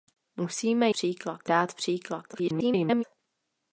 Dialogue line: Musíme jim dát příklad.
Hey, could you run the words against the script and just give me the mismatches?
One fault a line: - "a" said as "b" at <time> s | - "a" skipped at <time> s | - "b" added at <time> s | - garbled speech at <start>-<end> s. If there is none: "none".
- "jim" said as "příklad" at 0.9 s
- garbled speech at 2.3-3.0 s